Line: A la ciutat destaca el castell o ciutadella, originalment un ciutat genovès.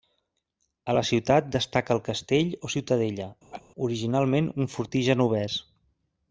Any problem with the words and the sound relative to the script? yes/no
yes